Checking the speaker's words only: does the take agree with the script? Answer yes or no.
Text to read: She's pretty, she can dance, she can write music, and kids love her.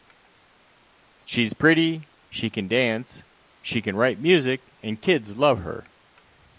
yes